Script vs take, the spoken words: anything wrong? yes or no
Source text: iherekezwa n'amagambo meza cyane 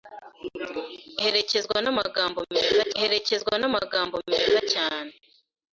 yes